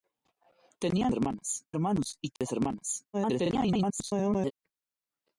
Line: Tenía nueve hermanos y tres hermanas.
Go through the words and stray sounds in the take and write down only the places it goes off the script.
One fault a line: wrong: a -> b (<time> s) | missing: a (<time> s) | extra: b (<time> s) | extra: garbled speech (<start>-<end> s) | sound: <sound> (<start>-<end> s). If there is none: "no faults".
wrong: nueve -> hermanas (1.1 s)
sound: dropout (2.4-2.4 s)
extra: garbled speech (3.1-4.5 s)